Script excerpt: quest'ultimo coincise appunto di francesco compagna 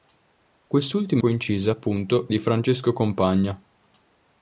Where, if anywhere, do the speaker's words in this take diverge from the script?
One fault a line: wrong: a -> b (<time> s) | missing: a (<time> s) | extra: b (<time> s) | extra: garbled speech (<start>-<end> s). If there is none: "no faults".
no faults